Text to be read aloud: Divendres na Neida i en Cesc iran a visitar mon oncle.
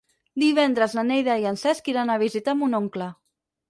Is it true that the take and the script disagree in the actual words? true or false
false